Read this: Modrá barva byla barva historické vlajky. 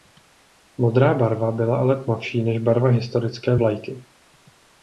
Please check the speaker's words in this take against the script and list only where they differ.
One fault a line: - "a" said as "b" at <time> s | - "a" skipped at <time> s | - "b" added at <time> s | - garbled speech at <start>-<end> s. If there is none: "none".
- "ale tmavší než" added at 1.8 s